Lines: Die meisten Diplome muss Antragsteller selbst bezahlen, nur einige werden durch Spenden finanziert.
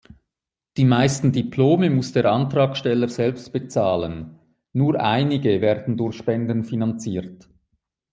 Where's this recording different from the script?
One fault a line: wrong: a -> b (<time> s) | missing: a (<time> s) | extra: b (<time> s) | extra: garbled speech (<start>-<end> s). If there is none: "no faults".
extra: der (2.1 s)